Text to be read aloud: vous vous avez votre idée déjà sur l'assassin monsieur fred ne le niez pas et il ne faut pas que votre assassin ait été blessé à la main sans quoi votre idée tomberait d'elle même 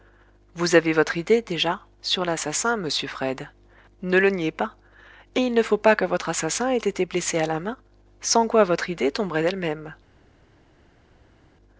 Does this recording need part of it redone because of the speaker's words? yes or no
yes